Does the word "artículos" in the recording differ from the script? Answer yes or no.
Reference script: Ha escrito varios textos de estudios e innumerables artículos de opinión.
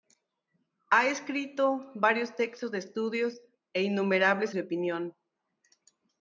yes